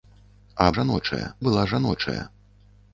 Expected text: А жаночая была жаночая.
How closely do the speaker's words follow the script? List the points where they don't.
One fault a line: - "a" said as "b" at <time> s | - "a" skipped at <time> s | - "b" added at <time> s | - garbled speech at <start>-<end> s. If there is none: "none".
none